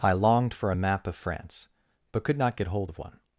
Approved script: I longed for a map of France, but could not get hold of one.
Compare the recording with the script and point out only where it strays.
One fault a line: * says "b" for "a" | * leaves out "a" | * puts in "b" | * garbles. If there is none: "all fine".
all fine